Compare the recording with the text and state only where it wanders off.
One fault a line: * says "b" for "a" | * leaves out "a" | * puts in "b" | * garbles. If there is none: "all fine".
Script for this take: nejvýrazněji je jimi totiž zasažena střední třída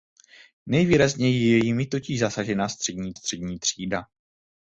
* puts in "střední"